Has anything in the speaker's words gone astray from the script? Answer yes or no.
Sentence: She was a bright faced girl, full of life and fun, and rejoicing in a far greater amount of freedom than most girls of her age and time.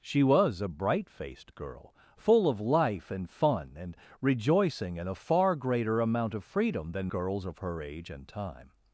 yes